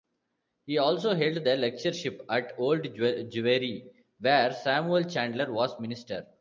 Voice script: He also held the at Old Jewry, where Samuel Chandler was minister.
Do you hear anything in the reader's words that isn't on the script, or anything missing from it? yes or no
yes